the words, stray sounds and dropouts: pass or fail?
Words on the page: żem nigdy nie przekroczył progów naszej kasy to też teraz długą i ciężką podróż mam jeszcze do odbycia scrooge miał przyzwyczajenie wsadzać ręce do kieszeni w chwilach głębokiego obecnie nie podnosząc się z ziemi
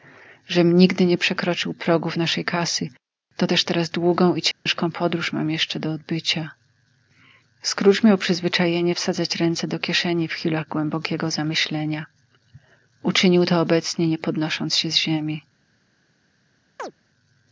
fail